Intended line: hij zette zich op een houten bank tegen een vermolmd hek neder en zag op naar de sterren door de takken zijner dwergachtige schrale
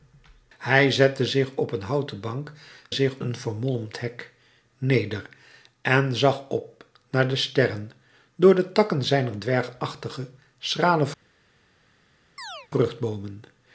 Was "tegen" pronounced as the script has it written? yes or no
no